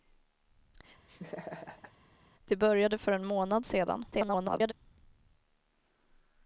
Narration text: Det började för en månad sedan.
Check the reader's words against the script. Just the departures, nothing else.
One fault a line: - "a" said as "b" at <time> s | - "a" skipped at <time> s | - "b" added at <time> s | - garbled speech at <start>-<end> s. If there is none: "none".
- garbled speech at 4.1-4.7 s